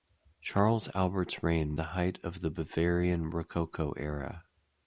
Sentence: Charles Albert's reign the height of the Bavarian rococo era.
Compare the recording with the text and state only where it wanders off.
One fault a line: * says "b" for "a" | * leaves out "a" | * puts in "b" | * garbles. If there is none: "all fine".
all fine